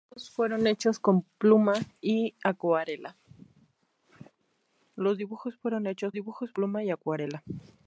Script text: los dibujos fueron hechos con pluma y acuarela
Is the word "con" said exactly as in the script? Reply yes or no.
no